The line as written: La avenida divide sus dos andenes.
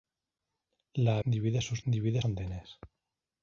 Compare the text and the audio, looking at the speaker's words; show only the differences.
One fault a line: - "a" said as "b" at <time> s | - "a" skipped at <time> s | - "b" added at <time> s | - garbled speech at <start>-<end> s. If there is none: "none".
- "avenida" skipped at 1.2 s
- "dos" said as "divide" at 1.9 s